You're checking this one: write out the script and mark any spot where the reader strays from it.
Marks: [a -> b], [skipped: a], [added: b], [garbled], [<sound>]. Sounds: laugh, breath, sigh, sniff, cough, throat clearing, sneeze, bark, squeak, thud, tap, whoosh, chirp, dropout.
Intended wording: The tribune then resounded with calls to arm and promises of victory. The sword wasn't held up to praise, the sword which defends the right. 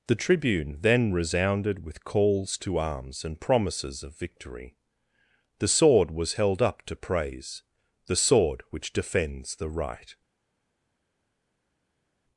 The tribune then resounded with calls to [arm -> arms] and promises of victory. The sword [wasn't -> was] held up to praise, the sword which defends the right.